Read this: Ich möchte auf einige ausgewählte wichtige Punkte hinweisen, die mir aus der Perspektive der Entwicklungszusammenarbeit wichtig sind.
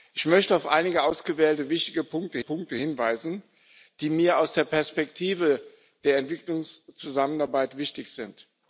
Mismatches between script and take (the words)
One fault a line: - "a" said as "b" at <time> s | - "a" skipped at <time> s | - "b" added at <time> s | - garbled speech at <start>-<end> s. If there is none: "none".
- "Punkte" added at 2.4 s